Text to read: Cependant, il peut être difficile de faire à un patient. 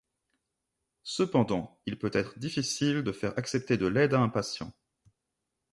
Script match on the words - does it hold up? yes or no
no